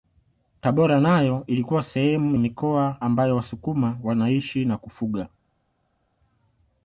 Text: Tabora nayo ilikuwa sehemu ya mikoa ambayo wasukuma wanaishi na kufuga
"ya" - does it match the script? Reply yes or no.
no